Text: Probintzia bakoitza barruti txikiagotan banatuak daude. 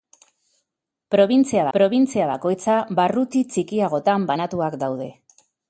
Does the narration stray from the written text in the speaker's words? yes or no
yes